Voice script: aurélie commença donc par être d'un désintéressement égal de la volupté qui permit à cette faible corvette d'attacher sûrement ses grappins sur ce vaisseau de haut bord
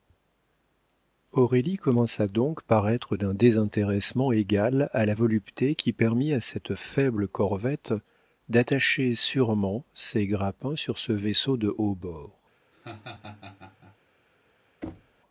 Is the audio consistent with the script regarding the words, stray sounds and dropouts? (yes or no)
no